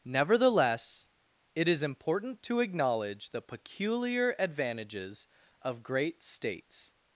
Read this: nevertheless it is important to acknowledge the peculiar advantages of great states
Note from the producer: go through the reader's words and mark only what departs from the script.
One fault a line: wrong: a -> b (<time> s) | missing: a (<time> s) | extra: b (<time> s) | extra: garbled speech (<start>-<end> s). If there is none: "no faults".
no faults